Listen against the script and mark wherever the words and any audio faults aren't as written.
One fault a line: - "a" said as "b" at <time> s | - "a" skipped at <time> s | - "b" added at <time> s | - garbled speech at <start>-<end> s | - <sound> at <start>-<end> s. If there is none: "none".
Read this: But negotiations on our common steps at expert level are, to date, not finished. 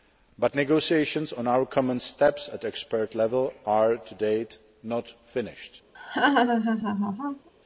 - laugh at 5.9-7.5 s